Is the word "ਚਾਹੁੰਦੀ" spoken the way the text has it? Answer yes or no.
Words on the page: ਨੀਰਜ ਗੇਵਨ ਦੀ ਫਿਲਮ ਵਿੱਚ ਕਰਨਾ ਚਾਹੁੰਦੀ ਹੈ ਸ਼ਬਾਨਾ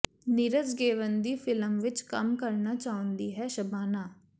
yes